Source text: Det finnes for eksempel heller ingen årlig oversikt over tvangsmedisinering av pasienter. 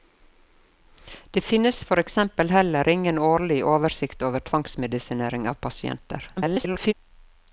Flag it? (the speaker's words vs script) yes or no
yes